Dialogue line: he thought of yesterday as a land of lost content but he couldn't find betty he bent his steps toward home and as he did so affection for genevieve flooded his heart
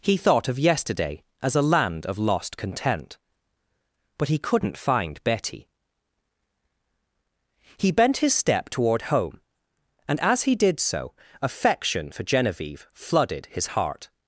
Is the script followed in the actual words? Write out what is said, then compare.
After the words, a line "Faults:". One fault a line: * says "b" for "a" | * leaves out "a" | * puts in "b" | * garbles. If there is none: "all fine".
he thought of yesterday as a land of lost content but he couldn't find betty he bent his step toward home and as he did so affection for genevieve flooded his heart
Faults:
* says "step" for "steps"